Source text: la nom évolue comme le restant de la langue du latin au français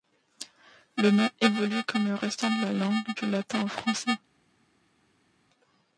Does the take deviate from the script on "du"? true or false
false